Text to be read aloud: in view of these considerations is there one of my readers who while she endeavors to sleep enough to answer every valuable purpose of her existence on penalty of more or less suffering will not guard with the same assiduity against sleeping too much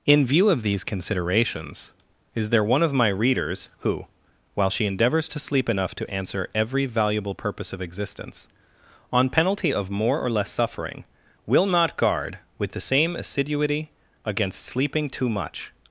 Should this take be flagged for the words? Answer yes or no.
yes